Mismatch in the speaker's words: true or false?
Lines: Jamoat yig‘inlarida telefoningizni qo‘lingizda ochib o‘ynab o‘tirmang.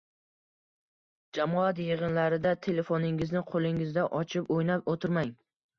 false